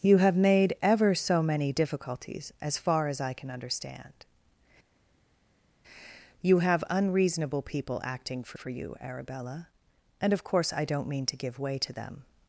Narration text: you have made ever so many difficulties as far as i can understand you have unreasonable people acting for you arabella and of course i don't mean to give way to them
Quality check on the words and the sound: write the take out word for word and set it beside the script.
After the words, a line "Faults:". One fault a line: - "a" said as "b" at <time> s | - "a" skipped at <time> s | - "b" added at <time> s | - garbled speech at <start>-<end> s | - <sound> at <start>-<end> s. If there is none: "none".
you have made ever so many difficulties as far as i can understand you have unreasonable people acting for for you arabella and of course i don't mean to give way to them
Faults:
- "for" added at 8.5 s